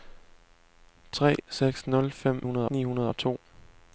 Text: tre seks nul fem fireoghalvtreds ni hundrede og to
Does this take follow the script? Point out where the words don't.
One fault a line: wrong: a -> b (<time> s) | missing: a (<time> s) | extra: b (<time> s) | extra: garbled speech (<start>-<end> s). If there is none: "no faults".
wrong: fireoghalvtreds -> hundrede (2.4 s)